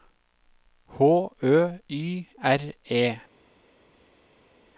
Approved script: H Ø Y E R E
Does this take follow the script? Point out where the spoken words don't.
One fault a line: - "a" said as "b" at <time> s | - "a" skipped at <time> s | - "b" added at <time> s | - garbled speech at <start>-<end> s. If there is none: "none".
- "E" skipped at 2.3 s